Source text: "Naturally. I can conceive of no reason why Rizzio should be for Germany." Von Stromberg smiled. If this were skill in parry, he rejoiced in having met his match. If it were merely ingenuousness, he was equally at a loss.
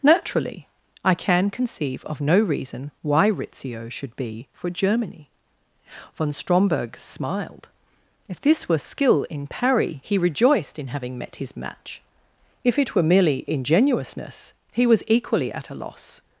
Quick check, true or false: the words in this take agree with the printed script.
true